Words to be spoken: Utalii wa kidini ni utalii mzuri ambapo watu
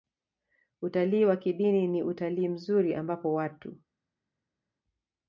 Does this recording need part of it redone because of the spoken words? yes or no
no